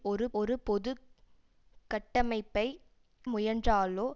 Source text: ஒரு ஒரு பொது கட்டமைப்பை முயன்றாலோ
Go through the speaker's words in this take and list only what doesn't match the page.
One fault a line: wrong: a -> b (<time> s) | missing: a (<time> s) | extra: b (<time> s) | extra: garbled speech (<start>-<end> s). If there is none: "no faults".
no faults